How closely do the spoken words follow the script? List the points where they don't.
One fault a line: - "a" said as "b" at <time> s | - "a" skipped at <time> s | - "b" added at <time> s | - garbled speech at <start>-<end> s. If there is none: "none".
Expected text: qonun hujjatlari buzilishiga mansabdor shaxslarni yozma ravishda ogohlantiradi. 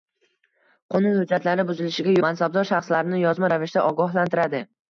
none